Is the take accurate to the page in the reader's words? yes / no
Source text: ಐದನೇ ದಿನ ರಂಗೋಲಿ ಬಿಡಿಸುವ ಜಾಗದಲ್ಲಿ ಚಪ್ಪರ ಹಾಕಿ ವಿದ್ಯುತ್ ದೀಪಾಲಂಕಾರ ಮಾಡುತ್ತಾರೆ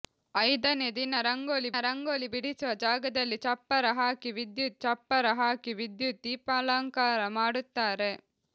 no